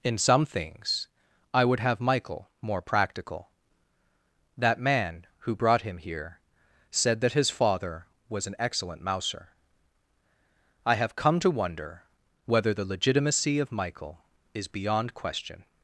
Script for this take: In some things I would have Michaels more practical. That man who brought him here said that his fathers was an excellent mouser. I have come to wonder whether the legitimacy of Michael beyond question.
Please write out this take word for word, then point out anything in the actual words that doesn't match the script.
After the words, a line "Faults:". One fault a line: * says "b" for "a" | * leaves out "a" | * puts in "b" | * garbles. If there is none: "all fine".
In some things I would have Michael more practical. That man who brought him here said that his father was an excellent mouser. I have come to wonder whether the legitimacy of Michael is beyond question.
Faults:
* says "Michael" for "Michaels"
* says "father" for "fathers"
* puts in "is"